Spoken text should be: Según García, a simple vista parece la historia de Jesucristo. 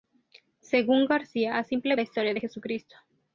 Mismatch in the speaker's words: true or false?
true